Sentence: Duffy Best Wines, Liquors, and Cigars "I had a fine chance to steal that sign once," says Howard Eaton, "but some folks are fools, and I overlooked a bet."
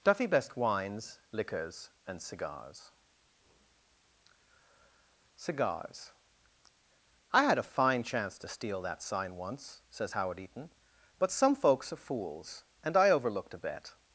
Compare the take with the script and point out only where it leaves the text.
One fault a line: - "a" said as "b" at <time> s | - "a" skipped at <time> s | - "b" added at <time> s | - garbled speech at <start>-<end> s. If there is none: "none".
- "Cigars" added at 5.3 s